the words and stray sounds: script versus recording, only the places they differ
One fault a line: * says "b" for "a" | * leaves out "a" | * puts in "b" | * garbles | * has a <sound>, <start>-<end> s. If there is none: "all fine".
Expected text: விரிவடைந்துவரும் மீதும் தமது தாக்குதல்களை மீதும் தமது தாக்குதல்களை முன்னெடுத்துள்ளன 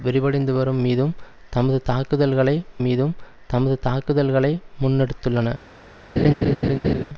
* has a laugh, 6.2-7.0 s